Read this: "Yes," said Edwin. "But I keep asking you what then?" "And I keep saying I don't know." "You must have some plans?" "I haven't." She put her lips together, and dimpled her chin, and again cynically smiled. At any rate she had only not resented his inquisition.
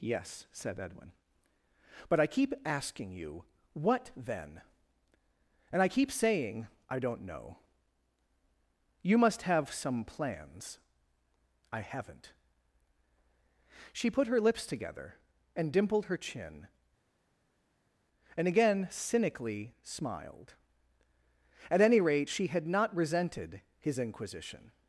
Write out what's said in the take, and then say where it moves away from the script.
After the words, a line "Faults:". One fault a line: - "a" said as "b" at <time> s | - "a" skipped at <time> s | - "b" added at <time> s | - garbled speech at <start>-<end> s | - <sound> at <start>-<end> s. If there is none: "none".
"Yes," said Edwin. "But I keep asking you what then?" "And I keep saying I don't know." "You must have some plans?" "I haven't." She put her lips together, and dimpled her chin, and again cynically smiled. At any rate she had not resented his inquisition.
Faults:
- "only" skipped at 22.7 s